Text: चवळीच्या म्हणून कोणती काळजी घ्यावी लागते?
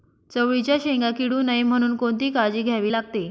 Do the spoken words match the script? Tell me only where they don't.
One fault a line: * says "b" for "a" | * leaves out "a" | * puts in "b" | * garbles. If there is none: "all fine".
* puts in "शेंगा किडू नये"